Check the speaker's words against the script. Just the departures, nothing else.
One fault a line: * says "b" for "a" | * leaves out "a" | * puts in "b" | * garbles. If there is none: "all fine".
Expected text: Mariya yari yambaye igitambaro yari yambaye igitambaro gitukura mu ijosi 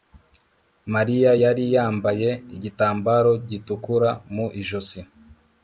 * leaves out "yari yambaye igitambaro"